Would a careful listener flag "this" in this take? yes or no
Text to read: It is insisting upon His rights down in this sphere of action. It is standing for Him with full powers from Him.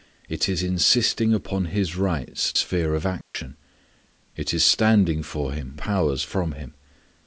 yes